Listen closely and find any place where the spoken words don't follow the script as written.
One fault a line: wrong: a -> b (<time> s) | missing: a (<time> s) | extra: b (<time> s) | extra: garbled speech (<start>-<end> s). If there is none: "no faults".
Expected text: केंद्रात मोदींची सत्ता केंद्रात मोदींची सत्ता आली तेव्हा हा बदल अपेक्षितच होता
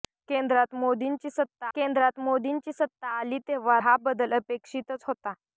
no faults